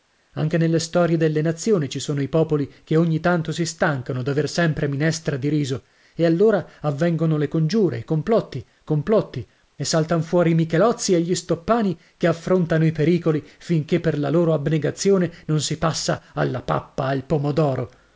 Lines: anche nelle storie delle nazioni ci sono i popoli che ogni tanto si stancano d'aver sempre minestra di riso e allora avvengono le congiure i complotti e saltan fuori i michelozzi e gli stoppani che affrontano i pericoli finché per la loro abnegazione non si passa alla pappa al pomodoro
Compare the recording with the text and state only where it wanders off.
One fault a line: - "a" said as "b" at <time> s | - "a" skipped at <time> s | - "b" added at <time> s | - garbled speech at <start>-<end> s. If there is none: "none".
- "complotti" added at 8.8 s